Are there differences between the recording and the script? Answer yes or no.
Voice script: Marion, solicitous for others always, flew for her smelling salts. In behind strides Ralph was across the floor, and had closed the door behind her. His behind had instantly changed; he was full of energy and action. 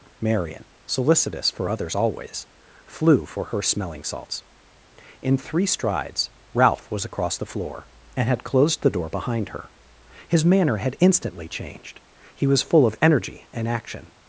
yes